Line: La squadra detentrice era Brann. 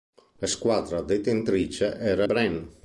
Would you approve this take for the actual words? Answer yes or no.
yes